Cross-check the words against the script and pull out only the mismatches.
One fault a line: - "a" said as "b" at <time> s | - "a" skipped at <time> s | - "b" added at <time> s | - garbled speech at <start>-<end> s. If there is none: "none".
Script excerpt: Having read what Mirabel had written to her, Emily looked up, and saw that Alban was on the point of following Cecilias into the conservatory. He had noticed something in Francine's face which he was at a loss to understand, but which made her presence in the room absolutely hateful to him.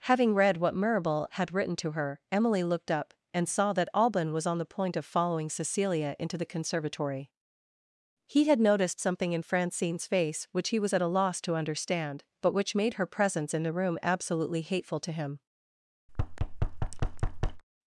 - "Cecilias" said as "Cecilia" at 5.5 s